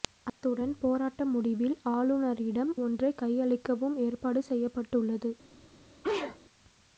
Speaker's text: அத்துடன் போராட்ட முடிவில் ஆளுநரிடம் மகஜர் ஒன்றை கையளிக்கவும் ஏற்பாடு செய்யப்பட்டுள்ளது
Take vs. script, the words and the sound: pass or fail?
fail